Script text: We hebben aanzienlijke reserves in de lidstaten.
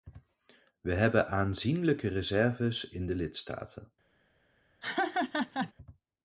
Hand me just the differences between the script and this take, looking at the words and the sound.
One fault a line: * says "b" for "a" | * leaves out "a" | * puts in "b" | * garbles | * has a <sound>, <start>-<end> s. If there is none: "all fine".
* has a laugh, 4.8-5.7 s